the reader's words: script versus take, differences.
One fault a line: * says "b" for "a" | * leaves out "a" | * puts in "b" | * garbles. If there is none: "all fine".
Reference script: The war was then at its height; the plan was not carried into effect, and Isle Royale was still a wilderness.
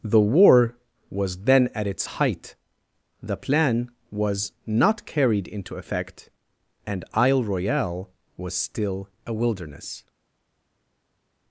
all fine